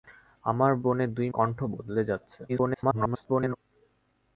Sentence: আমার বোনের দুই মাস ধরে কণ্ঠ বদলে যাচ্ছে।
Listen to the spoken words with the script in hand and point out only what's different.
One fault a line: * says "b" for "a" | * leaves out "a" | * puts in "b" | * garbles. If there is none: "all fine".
* leaves out "মাস ধরে"
* garbles